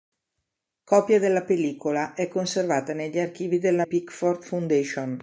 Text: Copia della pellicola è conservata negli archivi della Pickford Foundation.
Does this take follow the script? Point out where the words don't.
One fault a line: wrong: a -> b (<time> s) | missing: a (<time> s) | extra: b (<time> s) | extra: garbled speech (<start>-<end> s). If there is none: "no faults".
no faults